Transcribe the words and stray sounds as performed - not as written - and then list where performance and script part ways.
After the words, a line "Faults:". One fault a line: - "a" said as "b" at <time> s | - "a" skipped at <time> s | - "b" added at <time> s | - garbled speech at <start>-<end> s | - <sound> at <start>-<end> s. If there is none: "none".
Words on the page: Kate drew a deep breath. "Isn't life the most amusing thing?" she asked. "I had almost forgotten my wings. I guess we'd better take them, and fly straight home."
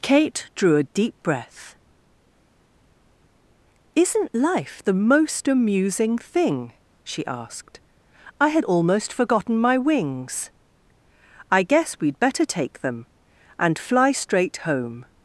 Kate drew a deep breath. "Isn't life the most amusing thing?" she asked. "I had almost forgotten my wings. I guess we'd better take them, and fly straight home."
Faults:
none